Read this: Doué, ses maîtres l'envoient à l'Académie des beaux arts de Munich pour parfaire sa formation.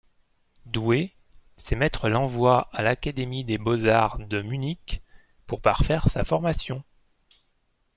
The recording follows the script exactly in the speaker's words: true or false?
true